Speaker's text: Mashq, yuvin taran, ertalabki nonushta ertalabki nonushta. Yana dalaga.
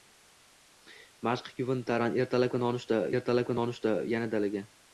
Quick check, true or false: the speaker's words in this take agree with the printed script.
true